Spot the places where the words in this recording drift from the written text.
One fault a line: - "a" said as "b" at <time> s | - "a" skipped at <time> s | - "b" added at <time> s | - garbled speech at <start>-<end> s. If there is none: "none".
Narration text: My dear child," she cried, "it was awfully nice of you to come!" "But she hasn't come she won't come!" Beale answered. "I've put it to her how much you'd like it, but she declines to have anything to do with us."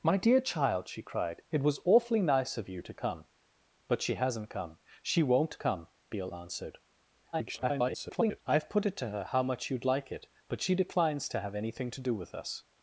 - garbled speech at 7.3-8.4 s